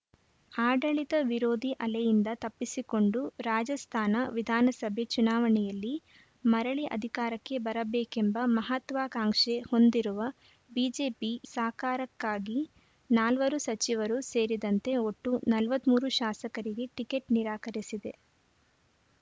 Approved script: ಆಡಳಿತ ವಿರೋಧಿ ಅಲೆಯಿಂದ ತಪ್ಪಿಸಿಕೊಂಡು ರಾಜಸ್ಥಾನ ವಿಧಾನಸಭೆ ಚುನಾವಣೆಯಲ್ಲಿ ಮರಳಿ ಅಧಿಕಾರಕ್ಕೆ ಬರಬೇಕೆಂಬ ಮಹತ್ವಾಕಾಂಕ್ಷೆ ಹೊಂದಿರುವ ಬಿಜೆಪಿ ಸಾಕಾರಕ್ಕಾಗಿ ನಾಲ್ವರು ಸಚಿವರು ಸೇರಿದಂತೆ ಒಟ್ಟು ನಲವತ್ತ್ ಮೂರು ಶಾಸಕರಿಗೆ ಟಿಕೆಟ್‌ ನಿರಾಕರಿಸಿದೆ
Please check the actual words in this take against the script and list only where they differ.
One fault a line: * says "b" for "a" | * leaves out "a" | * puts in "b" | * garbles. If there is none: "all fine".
all fine